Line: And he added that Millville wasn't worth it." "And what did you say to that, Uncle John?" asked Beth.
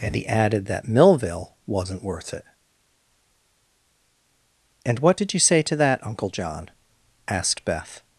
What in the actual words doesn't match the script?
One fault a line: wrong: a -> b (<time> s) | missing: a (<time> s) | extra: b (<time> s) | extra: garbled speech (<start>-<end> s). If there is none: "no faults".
no faults